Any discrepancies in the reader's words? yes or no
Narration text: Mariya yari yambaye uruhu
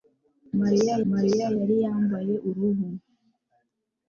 yes